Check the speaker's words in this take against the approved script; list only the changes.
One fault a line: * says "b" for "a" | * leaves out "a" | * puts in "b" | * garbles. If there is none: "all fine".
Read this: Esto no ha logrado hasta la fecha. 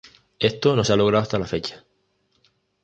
* puts in "se"